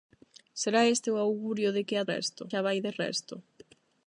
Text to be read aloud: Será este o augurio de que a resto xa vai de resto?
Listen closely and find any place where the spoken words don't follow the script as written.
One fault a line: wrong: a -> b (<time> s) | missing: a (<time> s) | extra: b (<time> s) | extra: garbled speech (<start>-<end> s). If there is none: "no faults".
no faults